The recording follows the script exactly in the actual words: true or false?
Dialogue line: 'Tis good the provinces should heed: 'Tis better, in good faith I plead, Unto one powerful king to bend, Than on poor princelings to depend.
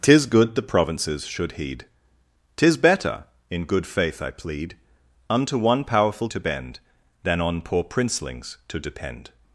false